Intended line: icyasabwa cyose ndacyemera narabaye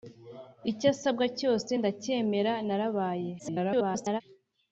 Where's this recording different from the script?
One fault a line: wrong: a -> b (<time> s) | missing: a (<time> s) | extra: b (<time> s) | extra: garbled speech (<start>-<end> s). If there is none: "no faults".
extra: garbled speech (3.4-4.2 s)